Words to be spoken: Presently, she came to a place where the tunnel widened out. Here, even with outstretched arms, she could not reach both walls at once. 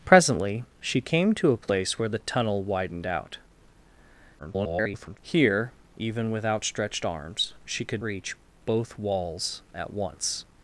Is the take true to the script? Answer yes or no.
no